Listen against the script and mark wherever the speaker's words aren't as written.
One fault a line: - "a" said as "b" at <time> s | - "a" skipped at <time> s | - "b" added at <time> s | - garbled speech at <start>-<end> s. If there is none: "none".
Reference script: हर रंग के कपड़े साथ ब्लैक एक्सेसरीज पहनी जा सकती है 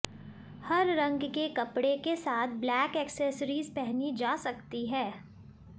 - "के" added at 2.0 s